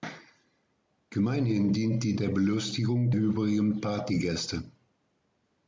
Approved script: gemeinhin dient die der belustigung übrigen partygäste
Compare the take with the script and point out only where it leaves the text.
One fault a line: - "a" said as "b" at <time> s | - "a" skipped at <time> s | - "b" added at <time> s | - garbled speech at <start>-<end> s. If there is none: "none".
none